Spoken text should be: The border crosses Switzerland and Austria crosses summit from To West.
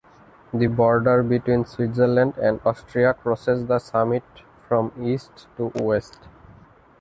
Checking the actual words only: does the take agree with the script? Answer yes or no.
no